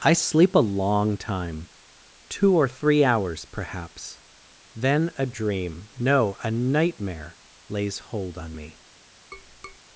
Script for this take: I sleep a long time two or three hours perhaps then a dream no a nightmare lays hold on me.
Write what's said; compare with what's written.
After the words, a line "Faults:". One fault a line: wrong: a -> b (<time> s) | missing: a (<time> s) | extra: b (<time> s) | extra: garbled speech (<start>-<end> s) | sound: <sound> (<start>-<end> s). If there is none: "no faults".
I sleep a long time two or three hours perhaps then a dream no a nightmare lays hold on me.
Faults:
sound: tap (9.3-9.8 s)